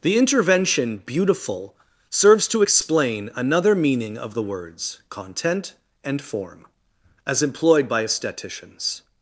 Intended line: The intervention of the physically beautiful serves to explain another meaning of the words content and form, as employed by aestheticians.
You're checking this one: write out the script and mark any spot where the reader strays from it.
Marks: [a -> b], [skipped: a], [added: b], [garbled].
The intervention [skipped: of the physically] beautiful serves to explain another meaning of the words content and form, as employed by aestheticians.